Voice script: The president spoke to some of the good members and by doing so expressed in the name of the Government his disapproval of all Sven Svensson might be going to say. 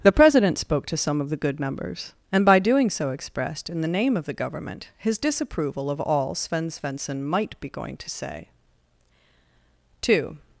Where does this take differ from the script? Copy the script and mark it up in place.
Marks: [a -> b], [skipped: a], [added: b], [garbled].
The president spoke to some of the good members and by doing so expressed in the name of the Government his disapproval of all Sven Svensson might be going to say. [added: Two]